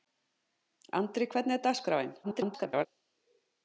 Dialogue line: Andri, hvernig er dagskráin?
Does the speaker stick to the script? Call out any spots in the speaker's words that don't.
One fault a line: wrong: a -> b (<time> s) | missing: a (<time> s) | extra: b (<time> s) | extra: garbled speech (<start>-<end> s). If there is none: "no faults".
extra: garbled speech (2.2-2.9 s)